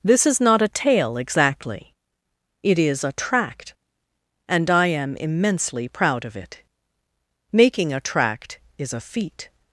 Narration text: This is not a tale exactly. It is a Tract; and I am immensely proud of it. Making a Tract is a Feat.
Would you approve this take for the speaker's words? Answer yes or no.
yes